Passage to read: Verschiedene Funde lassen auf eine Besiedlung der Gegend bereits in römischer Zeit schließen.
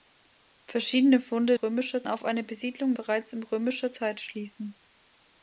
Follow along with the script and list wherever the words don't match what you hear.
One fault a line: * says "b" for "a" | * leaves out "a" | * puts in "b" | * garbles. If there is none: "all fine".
* says "römischer" for "lassen"
* leaves out "der Gegend"